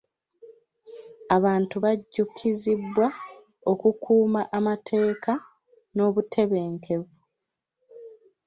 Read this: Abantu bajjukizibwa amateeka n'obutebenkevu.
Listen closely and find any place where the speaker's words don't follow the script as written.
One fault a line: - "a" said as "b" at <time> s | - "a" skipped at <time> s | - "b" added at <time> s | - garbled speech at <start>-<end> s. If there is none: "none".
- "okukuuma" added at 3.7 s